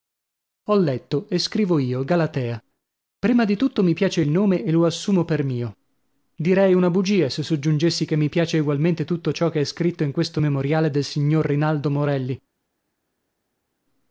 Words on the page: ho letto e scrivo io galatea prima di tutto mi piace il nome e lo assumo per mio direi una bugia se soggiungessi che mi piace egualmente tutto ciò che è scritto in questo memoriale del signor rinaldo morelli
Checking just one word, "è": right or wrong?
right